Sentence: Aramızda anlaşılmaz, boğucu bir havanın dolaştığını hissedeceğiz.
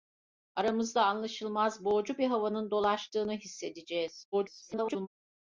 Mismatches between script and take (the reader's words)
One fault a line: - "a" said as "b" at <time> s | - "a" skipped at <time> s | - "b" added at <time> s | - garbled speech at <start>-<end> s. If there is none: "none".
- garbled speech at 4.3-5.1 s